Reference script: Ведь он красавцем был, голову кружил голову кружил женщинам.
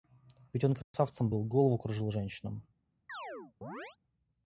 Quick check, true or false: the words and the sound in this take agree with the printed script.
false